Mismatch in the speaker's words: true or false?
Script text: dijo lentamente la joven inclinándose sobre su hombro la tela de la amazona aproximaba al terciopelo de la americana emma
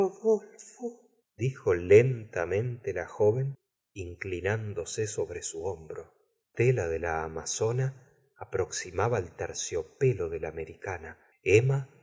true